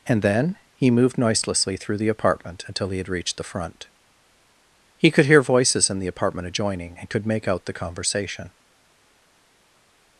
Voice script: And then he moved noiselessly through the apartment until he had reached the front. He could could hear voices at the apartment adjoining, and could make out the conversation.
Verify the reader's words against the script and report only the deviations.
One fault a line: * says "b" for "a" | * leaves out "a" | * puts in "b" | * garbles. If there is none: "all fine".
* leaves out "could"
* says "in" for "at"